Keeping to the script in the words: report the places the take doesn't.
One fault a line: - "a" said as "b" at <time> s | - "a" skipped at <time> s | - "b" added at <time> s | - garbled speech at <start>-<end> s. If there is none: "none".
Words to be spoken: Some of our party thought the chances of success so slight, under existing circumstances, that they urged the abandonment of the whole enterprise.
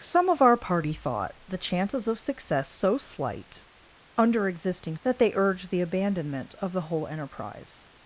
- "circumstances" skipped at 5.0 s